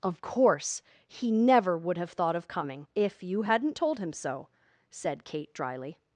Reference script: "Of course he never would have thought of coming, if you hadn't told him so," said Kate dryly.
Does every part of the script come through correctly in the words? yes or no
yes